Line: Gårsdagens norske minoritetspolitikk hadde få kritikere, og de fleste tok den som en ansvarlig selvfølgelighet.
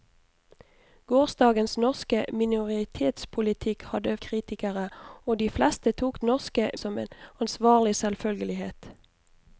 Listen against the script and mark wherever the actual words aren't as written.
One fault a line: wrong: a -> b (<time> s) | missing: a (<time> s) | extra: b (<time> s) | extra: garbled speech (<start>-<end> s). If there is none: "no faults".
missing: få (4.2 s)
wrong: den -> norske (6.2 s)